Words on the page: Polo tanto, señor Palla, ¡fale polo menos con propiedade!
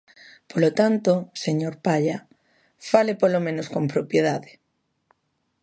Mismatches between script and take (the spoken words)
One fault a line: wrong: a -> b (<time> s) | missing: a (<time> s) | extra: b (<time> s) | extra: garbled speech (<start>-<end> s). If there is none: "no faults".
no faults